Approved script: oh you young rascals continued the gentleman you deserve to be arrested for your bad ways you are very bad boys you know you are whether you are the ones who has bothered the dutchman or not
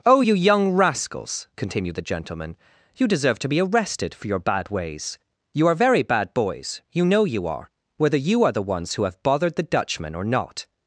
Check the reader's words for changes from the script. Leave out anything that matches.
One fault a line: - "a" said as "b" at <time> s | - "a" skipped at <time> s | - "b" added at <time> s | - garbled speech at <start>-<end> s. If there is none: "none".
- "has" said as "have" at 9.1 s